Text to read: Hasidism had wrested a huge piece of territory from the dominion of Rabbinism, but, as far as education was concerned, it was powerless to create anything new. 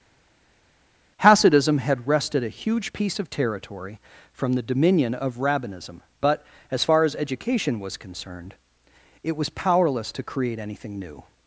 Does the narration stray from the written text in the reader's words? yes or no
no